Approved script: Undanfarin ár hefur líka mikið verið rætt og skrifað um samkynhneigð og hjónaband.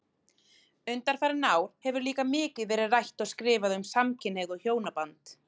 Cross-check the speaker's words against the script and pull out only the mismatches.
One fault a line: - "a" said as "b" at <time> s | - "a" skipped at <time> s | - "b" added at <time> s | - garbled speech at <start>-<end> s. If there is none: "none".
none